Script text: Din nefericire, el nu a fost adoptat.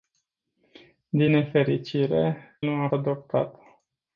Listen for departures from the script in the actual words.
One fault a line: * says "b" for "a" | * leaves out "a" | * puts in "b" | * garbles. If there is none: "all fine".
* leaves out "el"
* leaves out "fost"